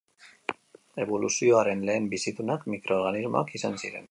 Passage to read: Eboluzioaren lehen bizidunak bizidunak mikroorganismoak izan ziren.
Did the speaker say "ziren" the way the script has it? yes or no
yes